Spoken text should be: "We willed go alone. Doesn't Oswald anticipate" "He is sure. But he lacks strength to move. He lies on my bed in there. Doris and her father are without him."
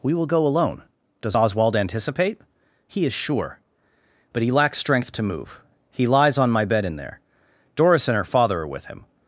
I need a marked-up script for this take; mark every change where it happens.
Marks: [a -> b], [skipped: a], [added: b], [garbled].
"We [willed -> will] go alone. [Doesn't -> Does] Oswald anticipate" "He is sure. But he lacks strength to move. He lies on my bed in there. Doris and her father are [without -> with] him."